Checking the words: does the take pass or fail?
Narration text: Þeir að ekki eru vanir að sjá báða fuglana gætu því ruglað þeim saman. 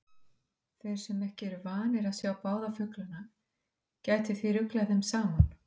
fail